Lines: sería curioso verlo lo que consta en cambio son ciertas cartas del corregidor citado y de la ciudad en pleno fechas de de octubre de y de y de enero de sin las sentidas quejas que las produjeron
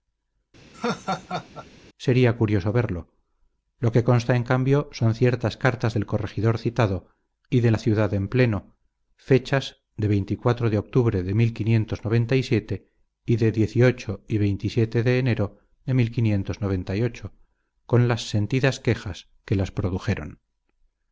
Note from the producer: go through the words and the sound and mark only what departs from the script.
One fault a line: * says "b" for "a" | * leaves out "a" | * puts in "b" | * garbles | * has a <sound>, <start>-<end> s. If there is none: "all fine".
* has a laugh, 0.7-1.7 s
* says "con" for "sin"